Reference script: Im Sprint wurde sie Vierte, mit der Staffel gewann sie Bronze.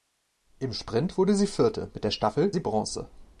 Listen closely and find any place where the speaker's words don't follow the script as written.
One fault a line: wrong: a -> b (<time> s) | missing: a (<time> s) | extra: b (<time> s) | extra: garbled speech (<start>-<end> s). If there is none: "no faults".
missing: gewann (2.5 s)